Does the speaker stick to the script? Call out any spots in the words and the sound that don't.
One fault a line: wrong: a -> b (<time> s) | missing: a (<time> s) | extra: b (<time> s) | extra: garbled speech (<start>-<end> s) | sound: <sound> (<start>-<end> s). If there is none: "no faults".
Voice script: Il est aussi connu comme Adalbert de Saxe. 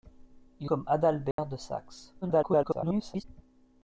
missing: est aussi connu (0.7 s)
sound: dropout (1.3-1.4 s)
extra: garbled speech (2.2-3.2 s)